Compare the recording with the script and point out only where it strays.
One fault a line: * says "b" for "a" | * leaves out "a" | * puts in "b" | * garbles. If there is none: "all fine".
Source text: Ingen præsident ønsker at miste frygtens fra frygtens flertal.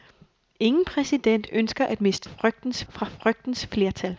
all fine